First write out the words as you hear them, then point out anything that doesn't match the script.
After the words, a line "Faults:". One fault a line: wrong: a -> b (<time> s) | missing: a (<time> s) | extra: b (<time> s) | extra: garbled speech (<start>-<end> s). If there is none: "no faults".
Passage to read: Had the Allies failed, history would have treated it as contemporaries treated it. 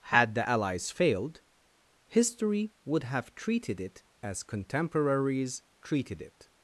Had the Allies failed, history would have treated it as contemporaries treated it.
Faults:
no faults